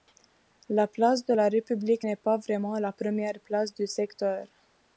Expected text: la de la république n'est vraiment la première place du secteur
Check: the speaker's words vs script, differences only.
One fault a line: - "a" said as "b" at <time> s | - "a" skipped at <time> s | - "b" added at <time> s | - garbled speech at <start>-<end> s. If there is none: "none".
- "place" added at 0.9 s
- "pas" added at 2.2 s